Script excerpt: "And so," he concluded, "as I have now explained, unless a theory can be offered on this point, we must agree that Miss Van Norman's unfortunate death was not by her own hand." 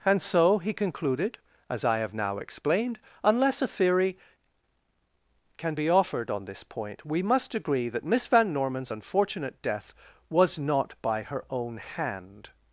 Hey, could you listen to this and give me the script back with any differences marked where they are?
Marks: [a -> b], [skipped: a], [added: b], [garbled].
"And so," he concluded, "as I have now explained, unless a theory can be offered on this point, we must agree that Miss Van Norman's unfortunate death was not by her own hand."